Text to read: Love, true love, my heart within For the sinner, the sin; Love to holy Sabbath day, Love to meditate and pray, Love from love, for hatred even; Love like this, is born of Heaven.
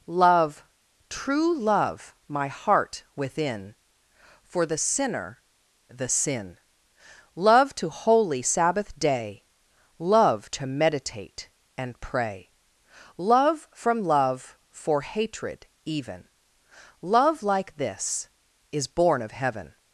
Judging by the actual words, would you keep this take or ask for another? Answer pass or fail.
pass